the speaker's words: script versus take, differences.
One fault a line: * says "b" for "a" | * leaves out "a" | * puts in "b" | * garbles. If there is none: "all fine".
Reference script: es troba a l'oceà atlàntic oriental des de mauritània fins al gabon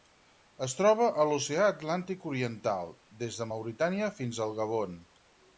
all fine